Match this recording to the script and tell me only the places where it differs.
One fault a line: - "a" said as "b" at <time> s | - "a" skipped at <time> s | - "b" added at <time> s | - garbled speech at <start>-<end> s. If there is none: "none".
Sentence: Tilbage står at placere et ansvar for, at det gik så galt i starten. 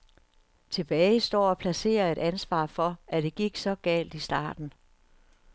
none